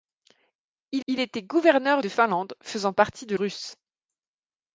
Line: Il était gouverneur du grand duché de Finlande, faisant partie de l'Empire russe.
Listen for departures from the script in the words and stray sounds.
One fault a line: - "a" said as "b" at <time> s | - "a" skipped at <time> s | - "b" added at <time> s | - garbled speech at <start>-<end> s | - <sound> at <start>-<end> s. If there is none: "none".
- "il" added at 1.1 s
- "du grand duché" skipped at 2.0 s
- "l'Empire" skipped at 3.4 s